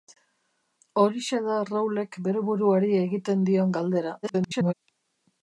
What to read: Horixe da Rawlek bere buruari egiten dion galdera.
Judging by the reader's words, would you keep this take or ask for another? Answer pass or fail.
fail